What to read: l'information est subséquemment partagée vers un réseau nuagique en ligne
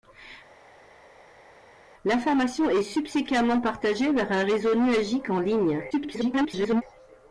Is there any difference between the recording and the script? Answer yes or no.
yes